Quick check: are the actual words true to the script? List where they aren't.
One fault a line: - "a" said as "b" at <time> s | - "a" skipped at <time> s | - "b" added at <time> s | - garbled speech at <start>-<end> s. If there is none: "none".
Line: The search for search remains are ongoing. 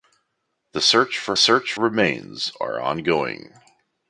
none